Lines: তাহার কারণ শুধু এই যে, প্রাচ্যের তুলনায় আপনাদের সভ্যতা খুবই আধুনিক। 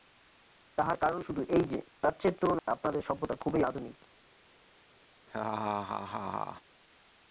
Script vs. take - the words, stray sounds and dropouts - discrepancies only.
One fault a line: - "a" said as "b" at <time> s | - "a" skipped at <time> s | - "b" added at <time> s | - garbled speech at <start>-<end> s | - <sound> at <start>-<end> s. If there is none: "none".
- dropout at 2.6-2.7 s
- laugh at 5.3-6.6 s